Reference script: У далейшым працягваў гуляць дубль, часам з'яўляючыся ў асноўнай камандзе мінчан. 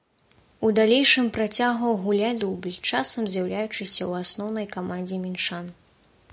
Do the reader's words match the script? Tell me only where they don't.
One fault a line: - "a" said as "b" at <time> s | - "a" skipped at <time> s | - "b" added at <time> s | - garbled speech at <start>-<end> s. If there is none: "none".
none